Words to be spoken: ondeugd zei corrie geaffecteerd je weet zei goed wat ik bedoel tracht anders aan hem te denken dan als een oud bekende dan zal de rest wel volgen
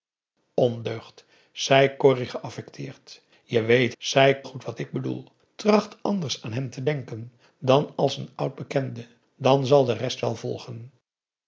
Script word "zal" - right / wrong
right